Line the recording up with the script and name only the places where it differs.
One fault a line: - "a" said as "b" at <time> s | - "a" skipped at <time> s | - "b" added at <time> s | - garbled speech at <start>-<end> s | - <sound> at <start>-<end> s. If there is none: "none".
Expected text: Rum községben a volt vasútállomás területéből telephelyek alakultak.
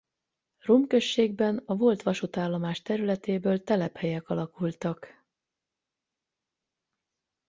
none